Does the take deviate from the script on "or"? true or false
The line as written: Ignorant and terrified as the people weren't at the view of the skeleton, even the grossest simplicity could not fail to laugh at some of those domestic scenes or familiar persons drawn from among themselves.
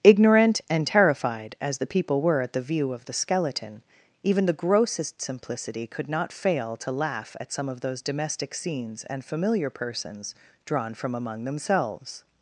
true